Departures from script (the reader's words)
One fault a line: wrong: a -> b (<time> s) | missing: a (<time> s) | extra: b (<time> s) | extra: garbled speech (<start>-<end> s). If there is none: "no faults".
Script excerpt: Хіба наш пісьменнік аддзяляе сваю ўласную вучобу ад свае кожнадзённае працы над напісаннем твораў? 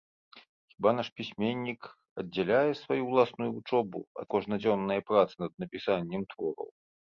missing: свае (4.3 s)